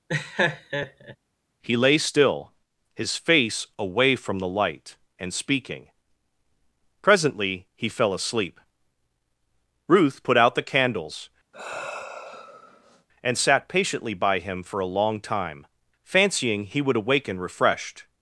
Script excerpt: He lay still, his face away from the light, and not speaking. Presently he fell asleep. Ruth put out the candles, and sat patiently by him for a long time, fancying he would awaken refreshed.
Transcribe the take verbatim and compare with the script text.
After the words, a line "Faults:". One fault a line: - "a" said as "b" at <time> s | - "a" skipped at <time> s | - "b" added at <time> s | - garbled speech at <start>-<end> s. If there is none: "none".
He lay still, his face away from the light, and speaking. Presently he fell asleep. Ruth put out the candles, and sat patiently by him for a long time, fancying he would awaken refreshed.
Faults:
- "not" skipped at 5.3 s